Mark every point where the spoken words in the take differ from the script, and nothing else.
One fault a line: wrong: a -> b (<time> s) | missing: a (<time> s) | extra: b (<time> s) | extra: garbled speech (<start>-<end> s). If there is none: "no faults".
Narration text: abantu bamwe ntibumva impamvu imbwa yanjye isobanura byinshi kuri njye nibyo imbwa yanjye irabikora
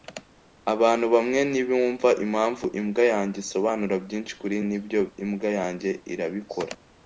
missing: njye (4.5 s)